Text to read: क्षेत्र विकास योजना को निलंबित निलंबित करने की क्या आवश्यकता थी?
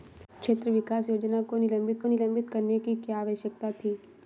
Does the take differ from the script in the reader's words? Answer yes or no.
no